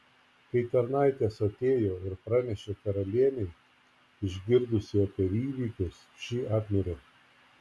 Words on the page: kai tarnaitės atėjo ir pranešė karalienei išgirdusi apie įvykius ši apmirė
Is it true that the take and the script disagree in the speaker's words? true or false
false